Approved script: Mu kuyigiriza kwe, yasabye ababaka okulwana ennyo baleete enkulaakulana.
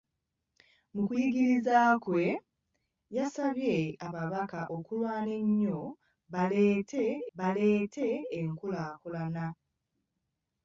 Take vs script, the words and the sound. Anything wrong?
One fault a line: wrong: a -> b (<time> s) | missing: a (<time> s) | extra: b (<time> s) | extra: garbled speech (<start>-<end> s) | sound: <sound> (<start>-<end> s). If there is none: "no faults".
extra: baleete (7.4 s)